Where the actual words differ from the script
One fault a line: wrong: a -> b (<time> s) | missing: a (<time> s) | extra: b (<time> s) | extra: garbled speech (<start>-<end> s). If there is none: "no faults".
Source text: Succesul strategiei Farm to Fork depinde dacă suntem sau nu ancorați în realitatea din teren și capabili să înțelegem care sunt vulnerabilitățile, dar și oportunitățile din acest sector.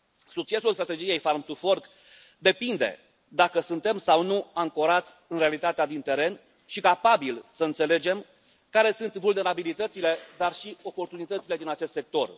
no faults